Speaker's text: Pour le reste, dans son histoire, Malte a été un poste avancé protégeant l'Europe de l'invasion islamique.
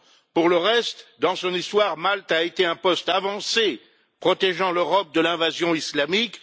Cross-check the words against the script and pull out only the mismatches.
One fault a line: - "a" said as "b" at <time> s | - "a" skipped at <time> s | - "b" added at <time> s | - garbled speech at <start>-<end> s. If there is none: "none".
none